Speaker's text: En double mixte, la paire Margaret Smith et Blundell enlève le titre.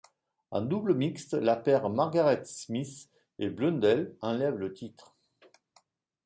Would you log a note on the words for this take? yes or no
no